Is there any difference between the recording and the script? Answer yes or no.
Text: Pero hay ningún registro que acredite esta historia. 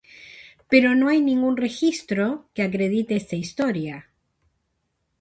yes